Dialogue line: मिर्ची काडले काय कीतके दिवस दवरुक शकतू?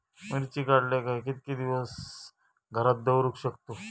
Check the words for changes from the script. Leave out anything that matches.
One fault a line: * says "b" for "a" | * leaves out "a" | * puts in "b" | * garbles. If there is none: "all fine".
* puts in "घरात"